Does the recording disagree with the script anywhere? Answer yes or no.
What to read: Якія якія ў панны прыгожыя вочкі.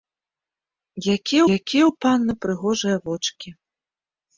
no